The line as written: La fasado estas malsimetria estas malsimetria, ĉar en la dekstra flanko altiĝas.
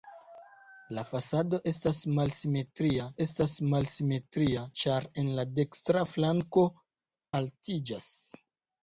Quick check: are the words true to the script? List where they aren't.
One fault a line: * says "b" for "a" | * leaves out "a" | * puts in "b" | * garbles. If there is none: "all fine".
all fine